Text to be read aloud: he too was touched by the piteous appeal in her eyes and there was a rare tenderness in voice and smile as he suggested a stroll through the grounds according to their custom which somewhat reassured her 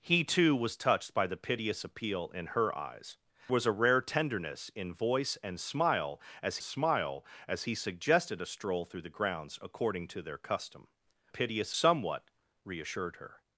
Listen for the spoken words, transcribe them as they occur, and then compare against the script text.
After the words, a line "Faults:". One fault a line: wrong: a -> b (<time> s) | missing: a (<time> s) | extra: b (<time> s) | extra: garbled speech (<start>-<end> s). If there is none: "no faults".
he too was touched by the piteous appeal in her eyes was a rare tenderness in voice and smile as smile as he suggested a stroll through the grounds according to their custom piteous somewhat reassured her
Faults:
missing: and there (3.2 s)
extra: smile as (6.6 s)
wrong: which -> piteous (11.3 s)